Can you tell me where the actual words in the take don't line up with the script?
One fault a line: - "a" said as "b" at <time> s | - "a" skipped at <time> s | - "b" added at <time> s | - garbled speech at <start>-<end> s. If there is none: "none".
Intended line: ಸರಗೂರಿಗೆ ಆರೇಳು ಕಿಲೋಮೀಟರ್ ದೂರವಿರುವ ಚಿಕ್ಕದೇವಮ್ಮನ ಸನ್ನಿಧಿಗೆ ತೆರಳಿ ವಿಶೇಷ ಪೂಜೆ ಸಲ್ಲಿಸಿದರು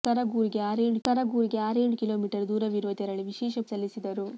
- "ಸರಗೂರಿಗೆ ಆರೇಳು" added at 1.0 s
- "ಚಿಕ್ಕದೇವಮ್ಮನ ಸನ್ನಿಧಿಗೆ" skipped at 2.9 s
- "ಪೂಜೆ" skipped at 3.6 s